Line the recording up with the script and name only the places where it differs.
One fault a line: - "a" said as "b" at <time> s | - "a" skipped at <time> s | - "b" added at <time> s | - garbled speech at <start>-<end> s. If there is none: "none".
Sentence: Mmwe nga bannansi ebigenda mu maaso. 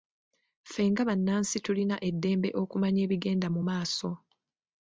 - "Mmwe" said as "Ffe" at 0.7 s
- "tulina eddembe okumanya" added at 1.6 s